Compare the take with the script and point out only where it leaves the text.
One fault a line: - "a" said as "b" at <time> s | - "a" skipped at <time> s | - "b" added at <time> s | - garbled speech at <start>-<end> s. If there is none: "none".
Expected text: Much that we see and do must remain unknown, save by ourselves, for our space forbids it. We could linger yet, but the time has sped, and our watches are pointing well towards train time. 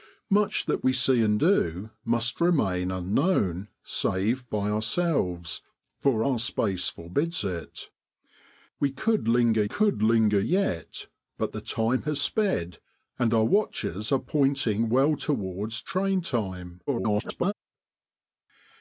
- "could linger" added at 9.6 s
- garbled speech at 16.9-17.5 s